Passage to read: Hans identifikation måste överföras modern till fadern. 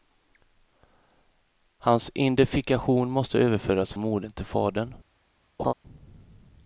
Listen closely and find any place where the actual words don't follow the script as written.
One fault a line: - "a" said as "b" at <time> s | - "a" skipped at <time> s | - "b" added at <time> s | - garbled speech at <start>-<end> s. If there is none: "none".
none